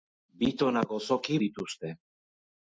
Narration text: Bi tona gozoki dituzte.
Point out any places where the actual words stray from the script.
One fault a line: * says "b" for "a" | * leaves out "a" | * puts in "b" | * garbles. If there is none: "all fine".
all fine